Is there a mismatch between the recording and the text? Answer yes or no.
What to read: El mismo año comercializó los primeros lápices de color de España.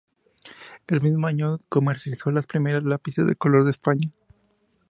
no